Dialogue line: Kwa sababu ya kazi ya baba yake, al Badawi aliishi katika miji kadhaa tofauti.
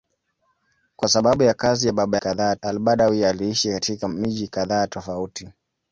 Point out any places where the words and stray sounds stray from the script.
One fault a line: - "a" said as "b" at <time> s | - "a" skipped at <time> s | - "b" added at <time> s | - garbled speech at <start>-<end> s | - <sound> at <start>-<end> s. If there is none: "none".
- "yake" said as "kadhaa" at 2.2 s